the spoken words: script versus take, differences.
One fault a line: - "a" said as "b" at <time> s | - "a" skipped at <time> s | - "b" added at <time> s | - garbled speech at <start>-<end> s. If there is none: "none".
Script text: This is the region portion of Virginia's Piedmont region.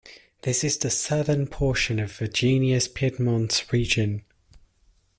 - "region" said as "southern" at 0.9 s